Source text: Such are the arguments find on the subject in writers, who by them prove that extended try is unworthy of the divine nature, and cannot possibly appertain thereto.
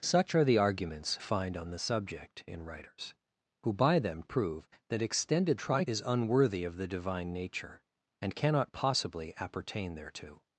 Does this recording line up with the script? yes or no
yes